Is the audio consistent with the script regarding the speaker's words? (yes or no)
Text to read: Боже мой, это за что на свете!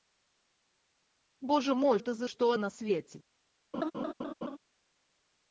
yes